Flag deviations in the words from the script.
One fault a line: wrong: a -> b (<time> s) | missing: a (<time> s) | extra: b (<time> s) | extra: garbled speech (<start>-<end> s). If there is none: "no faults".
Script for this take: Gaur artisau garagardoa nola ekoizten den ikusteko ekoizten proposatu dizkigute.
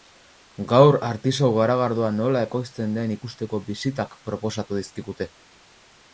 wrong: ekoizten -> bisitak (3.7 s)